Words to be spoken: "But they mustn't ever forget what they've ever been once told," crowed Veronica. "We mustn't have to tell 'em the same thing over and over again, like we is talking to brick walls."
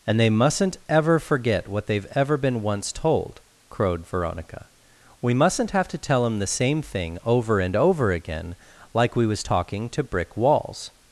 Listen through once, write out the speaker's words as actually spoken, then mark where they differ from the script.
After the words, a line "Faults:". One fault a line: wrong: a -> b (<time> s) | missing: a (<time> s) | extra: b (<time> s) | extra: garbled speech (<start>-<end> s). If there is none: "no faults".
"And they mustn't ever forget what they've ever been once told," crowed Veronica. "We mustn't have to tell 'em the same thing over and over again, like we was talking to brick walls."
Faults:
wrong: But -> And (0.1 s)
wrong: is -> was (9.3 s)